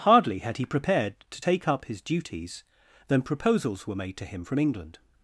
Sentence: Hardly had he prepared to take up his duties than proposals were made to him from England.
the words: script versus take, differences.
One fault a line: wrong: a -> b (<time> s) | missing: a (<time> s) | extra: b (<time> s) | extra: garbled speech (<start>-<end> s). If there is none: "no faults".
no faults